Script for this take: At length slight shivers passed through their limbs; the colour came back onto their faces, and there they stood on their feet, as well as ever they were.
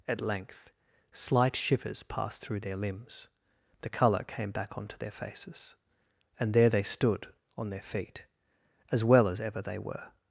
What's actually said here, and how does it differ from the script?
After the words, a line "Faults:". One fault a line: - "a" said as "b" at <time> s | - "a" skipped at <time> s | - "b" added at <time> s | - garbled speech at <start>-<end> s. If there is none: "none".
At length slight shivers passed through their limbs; the colour came back onto their faces, and there they stood on their feet, as well as ever they were.
Faults:
none